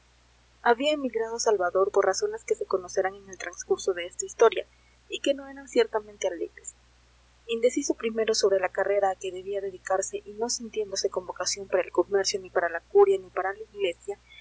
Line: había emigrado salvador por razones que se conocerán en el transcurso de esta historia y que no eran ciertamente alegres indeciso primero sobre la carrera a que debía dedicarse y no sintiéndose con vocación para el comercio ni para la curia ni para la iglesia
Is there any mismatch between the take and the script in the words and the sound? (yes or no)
no